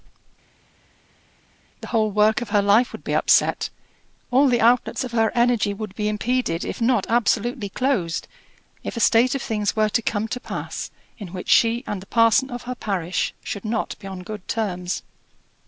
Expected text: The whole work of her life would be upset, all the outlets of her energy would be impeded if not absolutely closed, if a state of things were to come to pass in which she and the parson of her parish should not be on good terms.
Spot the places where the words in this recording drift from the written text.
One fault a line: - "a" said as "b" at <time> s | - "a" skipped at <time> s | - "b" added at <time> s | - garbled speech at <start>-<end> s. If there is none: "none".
none